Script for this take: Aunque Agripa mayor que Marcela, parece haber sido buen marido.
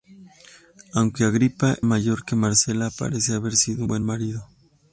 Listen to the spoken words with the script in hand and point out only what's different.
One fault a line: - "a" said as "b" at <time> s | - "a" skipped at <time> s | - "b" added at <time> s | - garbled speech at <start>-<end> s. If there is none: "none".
none